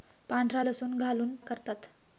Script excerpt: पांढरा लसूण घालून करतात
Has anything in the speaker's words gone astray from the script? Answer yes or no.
no